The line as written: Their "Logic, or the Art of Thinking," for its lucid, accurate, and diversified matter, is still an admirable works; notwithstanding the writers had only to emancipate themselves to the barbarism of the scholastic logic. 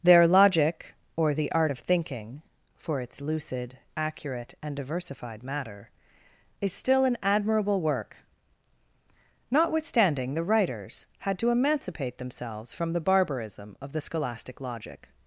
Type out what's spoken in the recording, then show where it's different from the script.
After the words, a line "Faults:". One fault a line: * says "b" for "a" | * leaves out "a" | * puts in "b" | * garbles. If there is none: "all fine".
Their "Logic, or the Art of Thinking," for its lucid, accurate, and diversified matter, is still an admirable work; notwithstanding the writers had to emancipate themselves from the barbarism of the scholastic logic.
Faults:
* says "work" for "works"
* leaves out "only"
* says "from" for "to"